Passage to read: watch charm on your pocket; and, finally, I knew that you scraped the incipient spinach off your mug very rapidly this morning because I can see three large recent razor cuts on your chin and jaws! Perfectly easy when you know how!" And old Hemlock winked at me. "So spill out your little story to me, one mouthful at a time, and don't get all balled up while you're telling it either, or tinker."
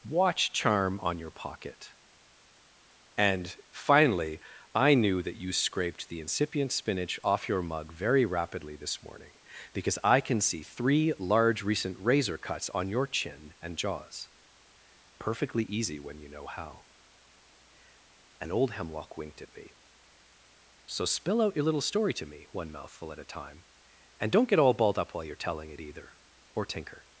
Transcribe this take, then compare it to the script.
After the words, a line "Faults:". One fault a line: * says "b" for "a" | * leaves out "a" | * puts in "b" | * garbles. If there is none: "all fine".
watch charm on your pocket; and, finally, I knew that you scraped the incipient spinach off your mug very rapidly this morning because I can see three large recent razor cuts on your chin and jaws! Perfectly easy when you know how!" And old Hemlock winked at me. "So spill out your little story to me, one mouthful at a time, and don't get all balled up while you're telling it either, or tinker."
Faults:
all fine